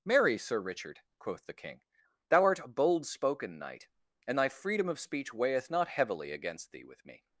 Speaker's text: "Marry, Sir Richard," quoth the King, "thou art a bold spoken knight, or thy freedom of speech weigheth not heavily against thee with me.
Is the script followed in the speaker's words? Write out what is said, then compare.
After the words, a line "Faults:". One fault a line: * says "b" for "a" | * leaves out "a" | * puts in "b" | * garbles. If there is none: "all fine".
"Marry, Sir Richard," quoth the King, "thou art a bold spoken knight, and thy freedom of speech weigheth not heavily against thee with me.
Faults:
* says "and" for "or"